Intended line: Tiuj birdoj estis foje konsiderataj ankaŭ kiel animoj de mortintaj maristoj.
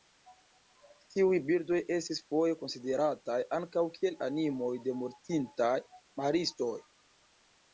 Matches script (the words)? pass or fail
pass